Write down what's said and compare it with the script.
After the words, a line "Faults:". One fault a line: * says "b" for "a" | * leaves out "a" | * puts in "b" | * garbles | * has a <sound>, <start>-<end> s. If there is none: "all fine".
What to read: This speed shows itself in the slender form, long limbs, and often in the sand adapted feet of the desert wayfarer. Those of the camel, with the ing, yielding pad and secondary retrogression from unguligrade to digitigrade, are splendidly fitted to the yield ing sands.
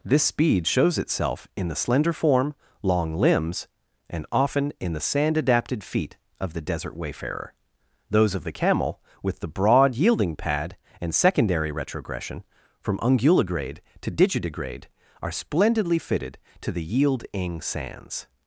This speed shows itself in the slender form, long limbs, and often in the sand adapted feet of the desert wayfarer. Those of the camel, with the broad, yielding pad and secondary retrogression from unguligrade to digitigrade, are splendidly fitted to the yield ing sands.
Faults:
* says "broad" for "ing"